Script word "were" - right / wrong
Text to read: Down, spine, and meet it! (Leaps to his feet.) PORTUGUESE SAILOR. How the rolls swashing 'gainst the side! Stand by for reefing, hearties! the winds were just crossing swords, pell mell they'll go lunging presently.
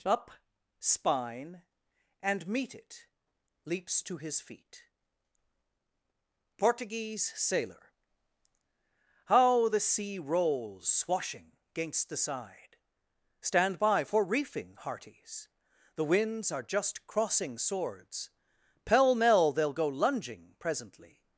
wrong